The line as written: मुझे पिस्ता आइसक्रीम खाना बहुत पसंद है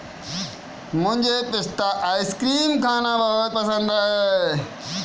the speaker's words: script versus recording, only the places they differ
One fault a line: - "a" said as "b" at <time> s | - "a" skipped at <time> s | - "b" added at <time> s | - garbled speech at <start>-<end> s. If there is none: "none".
none